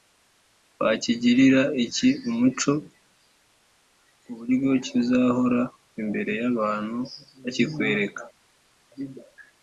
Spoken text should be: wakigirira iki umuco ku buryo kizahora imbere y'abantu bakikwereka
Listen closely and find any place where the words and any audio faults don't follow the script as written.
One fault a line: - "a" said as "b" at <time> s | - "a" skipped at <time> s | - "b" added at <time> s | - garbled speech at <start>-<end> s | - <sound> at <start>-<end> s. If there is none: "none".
none